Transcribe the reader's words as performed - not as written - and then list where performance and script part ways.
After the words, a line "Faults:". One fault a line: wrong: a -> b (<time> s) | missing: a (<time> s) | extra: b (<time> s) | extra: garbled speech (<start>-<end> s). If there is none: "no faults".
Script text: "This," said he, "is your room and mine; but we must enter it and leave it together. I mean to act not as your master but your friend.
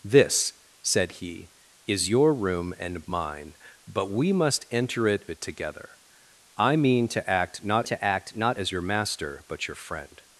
"This," said he, "is your room and mine; but we must enter it it together. I mean to act not to act not as your master but your friend.
Faults:
missing: and leave (5.3 s)
extra: to act not (7.8 s)